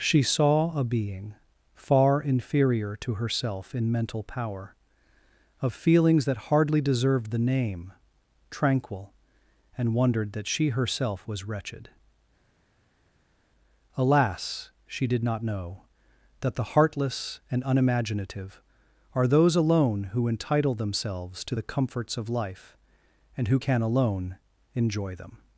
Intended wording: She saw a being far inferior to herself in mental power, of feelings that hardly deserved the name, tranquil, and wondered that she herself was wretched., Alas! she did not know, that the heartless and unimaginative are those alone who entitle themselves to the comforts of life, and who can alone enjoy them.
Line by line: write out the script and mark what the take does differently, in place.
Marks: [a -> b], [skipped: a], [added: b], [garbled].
She saw a being far inferior to herself in mental power, of feelings that hardly deserved the name, tranquil, and wondered that she herself was wretched., Alas! she did not know, that the heartless and unimaginative are those alone who entitle themselves to the comforts of life, and who can alone enjoy them.